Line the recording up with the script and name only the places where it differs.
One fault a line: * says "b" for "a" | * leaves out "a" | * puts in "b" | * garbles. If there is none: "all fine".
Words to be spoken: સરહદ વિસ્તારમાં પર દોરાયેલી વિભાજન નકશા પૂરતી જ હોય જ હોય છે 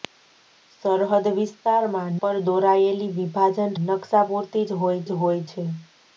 all fine